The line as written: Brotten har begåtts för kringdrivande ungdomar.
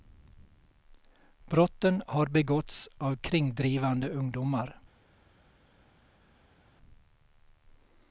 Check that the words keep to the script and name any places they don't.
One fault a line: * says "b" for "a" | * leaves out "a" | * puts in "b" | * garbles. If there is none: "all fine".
* says "av" for "för"